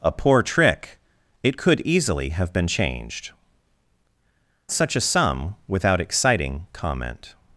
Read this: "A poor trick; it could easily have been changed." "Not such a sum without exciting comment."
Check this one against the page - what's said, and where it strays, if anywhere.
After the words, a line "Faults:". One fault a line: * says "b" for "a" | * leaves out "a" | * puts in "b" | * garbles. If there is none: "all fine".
"A poor trick; it could easily have been changed." "Such a sum without exciting comment."
Faults:
* leaves out "Not"